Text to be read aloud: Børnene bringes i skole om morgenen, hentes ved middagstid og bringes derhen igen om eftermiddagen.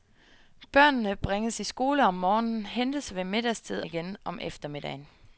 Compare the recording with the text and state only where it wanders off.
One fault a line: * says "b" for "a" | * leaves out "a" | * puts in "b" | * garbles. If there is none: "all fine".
* leaves out "og bringes derhen"